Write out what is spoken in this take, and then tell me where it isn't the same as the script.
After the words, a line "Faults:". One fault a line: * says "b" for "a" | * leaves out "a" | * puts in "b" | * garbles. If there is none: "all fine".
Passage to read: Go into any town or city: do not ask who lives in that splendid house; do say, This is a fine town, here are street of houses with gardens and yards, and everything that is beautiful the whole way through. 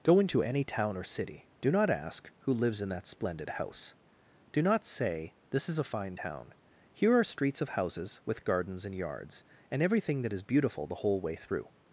Go into any town or city: do not ask who lives in that splendid house; do not say, This is a fine town, here are streets of houses with gardens and yards, and everything that is beautiful the whole way through.
Faults:
* puts in "not"
* says "streets" for "street"